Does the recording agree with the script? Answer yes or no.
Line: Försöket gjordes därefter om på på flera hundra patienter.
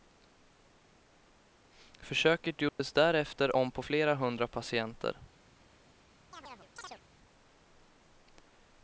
no